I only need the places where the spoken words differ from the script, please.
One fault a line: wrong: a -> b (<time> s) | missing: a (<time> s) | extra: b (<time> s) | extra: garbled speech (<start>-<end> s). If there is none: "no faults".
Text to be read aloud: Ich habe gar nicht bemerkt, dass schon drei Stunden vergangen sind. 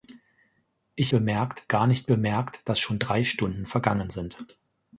wrong: habe -> bemerkt (1.1 s)